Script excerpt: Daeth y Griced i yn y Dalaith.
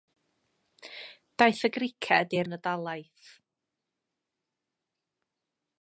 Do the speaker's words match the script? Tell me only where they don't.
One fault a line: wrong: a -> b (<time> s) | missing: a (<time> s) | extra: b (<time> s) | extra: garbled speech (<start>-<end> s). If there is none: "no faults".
no faults